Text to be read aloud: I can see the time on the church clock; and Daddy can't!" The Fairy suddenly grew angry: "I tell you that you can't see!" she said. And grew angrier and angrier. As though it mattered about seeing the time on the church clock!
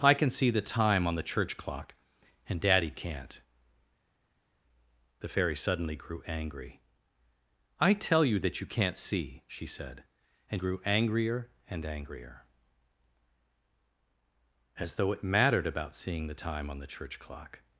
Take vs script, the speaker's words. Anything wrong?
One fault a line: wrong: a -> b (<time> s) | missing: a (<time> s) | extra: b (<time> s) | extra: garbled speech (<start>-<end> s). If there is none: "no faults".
no faults